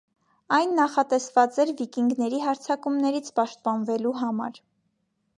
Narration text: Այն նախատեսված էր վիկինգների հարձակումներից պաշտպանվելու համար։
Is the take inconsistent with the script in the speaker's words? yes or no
no